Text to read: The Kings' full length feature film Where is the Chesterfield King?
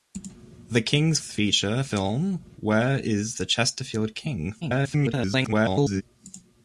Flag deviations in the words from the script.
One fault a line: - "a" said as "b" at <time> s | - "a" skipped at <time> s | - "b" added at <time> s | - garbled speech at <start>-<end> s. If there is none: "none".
- "full length" skipped at 1.2 s
- garbled speech at 4.6-6.0 s